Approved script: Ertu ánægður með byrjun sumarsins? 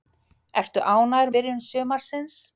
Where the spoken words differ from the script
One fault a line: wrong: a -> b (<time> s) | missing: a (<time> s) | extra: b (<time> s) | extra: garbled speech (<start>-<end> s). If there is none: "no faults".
missing: með (1.3 s)